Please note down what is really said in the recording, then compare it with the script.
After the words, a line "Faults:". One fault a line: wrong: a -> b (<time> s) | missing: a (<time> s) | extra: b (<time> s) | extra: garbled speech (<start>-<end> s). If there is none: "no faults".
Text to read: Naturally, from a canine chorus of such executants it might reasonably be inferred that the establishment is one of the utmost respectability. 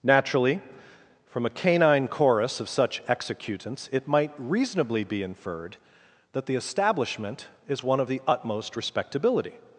Naturally, from a canine chorus of such executants it might reasonably be inferred that the establishment is one of the utmost respectability.
Faults:
no faults